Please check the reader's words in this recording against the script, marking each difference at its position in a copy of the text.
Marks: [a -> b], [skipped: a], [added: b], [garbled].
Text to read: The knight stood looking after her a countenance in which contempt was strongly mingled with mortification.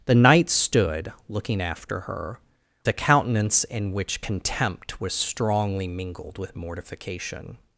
The knight stood looking after her a countenance in which contempt was strongly mingled with mortification.